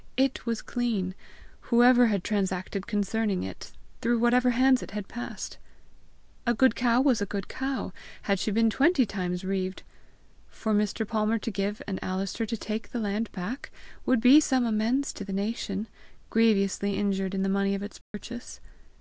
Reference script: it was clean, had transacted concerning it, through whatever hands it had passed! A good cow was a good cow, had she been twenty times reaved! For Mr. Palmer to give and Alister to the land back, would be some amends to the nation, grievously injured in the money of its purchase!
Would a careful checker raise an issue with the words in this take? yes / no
yes